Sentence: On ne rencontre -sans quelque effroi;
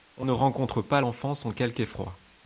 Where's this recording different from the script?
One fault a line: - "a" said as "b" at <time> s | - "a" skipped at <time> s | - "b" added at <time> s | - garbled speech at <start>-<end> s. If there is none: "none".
- "pas l'enfant" added at 0.8 s